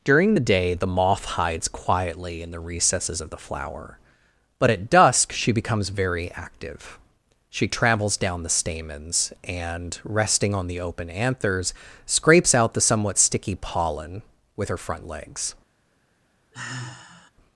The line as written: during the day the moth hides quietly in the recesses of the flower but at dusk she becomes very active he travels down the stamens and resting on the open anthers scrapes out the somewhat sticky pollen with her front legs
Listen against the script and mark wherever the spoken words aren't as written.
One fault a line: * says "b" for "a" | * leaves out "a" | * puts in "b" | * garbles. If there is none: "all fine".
* says "she" for "he"